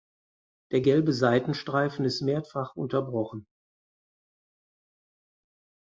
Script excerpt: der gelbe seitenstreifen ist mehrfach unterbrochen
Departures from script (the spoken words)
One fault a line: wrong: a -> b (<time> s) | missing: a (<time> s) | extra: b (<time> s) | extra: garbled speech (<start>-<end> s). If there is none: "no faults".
no faults